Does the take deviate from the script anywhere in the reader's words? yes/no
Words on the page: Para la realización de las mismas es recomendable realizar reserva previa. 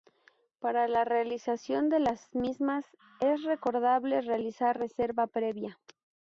no